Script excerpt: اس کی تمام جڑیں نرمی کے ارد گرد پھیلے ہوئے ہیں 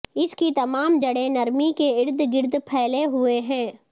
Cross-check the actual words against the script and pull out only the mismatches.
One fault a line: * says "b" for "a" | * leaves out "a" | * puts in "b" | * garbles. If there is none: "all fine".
all fine